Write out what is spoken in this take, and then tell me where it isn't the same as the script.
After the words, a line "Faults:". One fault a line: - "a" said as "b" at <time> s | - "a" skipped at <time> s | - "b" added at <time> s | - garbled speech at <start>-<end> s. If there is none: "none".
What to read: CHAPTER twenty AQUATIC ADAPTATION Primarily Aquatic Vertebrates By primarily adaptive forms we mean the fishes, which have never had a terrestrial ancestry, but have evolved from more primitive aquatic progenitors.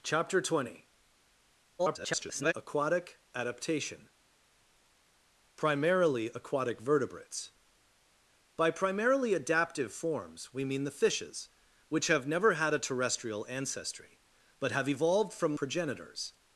CHAPTER twenty [garbled] AQUATIC ADAPTATION Primarily Aquatic Vertebrates By primarily adaptive forms we mean the fishes, which have never had a terrestrial ancestry, but have evolved from progenitors.
Faults:
- garbled speech at 1.8-2.5 s
- "more primitive aquatic" skipped at 15.6 s